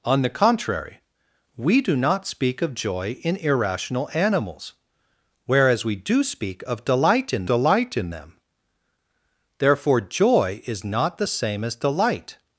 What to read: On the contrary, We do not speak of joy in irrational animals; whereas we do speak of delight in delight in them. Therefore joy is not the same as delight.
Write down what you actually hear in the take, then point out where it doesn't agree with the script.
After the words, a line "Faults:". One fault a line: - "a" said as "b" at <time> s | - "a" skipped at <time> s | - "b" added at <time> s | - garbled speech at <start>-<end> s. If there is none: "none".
On the contrary, We do not speak of joy in irrational animals; whereas we do speak of delight in delight in them. Therefore joy is not the same as delight.
Faults:
none